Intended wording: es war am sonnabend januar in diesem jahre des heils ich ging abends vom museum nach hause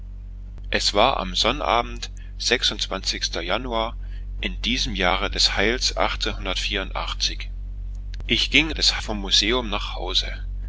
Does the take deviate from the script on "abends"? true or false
true